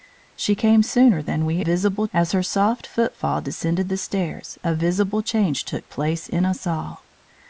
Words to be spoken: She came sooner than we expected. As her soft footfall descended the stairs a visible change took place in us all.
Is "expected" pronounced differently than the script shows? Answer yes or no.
yes